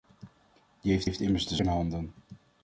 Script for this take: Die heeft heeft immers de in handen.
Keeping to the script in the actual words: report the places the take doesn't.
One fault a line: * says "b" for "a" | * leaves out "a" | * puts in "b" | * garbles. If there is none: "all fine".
all fine